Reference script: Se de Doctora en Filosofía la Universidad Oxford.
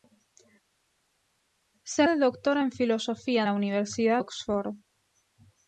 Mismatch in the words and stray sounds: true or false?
false